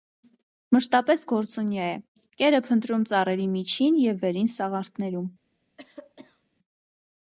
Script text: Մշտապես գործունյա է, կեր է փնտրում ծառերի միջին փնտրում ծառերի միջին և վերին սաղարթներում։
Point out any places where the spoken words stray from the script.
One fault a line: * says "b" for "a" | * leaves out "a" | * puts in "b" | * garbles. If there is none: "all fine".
* leaves out "փնտրում ծառերի միջին"